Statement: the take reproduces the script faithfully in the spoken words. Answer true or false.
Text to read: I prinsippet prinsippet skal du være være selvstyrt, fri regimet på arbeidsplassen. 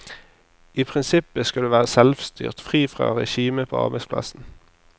false